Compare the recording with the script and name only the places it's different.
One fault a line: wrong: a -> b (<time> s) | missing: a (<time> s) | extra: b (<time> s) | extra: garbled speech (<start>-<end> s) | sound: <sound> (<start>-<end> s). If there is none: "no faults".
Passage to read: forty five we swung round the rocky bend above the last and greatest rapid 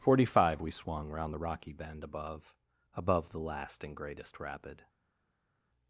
extra: above (2.9 s)